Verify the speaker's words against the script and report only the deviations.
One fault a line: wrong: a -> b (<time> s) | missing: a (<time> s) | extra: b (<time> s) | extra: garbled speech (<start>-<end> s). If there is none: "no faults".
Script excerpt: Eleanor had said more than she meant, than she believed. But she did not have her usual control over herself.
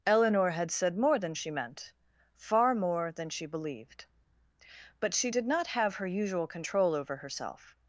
extra: far more (2.3 s)